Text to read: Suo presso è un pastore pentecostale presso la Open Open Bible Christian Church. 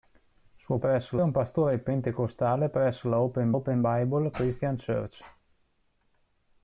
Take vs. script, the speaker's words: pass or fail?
pass